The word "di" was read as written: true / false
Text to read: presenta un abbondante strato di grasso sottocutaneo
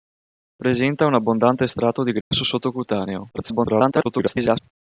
true